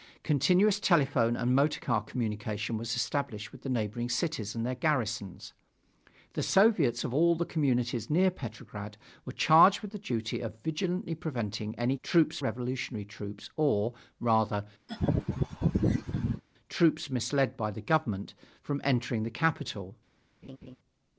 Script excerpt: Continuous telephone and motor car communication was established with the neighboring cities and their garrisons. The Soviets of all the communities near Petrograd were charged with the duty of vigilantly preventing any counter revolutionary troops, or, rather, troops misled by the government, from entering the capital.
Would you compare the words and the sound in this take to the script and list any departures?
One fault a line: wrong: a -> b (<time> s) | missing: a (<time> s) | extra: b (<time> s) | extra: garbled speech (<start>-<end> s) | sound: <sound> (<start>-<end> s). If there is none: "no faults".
wrong: counter -> troops (12.0 s)
sound: laugh (14.9-16.4 s)
sound: laugh (20.4-20.8 s)